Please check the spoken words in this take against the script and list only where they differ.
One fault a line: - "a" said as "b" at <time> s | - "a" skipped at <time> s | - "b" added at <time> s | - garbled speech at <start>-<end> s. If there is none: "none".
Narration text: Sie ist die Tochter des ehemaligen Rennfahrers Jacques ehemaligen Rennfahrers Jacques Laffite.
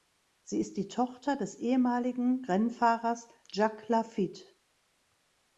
- "ehemaligen Rennfahrers Jacques" skipped at 3.9 s